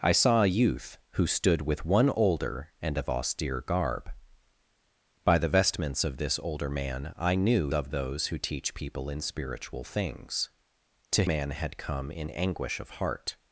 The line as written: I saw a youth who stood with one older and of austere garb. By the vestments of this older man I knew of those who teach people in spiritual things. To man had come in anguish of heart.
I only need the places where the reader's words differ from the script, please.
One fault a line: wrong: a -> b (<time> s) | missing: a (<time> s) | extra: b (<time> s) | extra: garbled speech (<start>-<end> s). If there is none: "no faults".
no faults